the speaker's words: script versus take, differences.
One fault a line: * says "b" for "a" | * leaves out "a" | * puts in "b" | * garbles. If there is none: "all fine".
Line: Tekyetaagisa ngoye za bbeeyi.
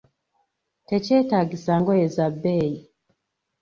all fine